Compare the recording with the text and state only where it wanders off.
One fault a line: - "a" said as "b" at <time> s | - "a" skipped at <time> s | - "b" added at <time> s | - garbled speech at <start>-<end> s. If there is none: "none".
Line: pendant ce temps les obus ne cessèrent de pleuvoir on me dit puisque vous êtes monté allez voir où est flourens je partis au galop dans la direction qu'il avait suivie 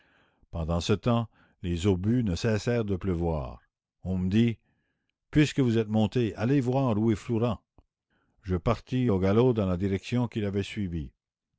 none